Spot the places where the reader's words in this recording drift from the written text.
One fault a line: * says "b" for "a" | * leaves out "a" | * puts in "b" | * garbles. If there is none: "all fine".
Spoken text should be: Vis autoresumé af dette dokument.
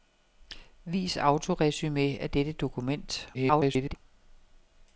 * garbles